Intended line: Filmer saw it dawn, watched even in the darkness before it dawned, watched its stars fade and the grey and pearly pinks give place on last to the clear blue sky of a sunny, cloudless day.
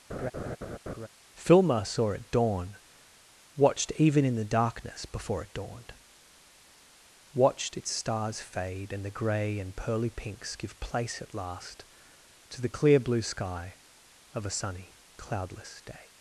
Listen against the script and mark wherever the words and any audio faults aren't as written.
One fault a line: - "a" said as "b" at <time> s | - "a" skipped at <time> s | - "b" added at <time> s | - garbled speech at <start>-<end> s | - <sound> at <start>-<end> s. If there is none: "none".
- laugh at 0.1-1.1 s
- "on" said as "at" at 11.2 s